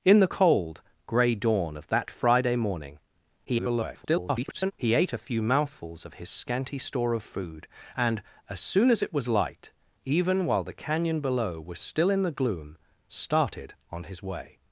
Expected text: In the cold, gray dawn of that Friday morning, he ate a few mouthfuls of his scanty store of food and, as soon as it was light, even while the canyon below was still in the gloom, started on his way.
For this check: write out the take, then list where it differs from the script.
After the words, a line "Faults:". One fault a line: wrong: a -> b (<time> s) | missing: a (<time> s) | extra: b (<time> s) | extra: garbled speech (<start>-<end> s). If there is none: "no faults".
In the cold, gray dawn of that Friday morning, [garbled] he ate a few mouthfuls of his scanty store of food and, as soon as it was light, even while the canyon below was still in the gloom, started on his way.
Faults:
extra: garbled speech (3.4-4.7 s)